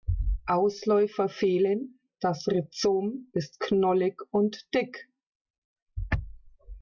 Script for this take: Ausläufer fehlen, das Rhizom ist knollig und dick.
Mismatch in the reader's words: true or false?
false